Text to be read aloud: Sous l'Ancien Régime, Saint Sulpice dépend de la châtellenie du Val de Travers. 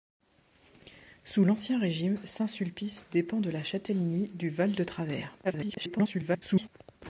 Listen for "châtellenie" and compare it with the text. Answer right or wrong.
right